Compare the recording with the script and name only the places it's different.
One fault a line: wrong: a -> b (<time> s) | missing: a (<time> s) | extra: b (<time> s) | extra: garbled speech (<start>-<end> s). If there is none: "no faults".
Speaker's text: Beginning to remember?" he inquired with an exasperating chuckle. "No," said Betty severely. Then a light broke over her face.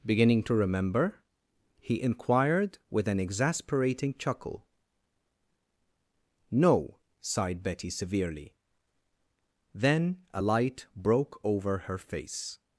wrong: said -> sighed (7.2 s)